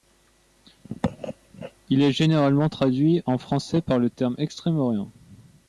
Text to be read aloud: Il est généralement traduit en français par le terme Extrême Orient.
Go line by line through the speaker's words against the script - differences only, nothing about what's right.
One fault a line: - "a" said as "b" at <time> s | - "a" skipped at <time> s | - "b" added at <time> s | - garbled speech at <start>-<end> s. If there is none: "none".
none